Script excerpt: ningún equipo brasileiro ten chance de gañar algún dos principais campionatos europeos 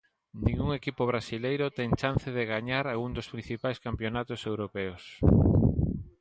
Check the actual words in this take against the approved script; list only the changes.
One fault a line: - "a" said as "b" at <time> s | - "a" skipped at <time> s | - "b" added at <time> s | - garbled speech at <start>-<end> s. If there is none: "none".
none